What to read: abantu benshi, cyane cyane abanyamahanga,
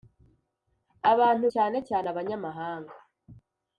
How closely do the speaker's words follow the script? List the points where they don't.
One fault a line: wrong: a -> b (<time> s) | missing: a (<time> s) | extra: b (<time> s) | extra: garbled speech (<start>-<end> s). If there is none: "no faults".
missing: benshi (1.4 s)